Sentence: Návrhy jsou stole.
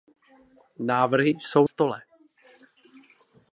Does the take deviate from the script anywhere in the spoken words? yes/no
no